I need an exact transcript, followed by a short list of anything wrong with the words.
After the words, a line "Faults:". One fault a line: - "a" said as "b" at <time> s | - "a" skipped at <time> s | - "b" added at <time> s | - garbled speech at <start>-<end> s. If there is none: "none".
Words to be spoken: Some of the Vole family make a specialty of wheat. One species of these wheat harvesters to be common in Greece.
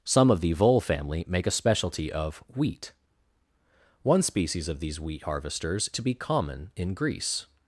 Some of the Vole family make a specialty of wheat. One species of these wheat harvesters to be common in Greece.
Faults:
none